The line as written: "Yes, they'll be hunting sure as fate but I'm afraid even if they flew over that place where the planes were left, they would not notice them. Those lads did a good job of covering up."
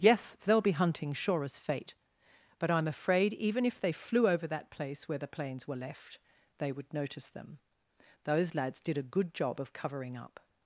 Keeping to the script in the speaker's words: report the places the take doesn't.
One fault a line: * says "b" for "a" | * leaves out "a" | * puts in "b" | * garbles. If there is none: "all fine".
* leaves out "not"